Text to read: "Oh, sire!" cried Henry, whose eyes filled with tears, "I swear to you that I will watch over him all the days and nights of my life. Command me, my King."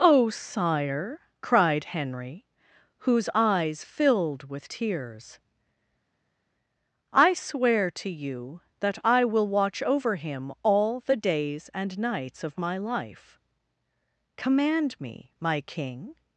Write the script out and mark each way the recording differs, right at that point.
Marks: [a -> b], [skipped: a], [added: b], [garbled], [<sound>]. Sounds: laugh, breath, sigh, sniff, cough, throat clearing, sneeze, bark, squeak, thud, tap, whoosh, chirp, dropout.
"Oh, sire!" cried Henry, whose eyes filled with tears, "I swear to you that I will watch over him all the days and nights of my life. Command me, my King."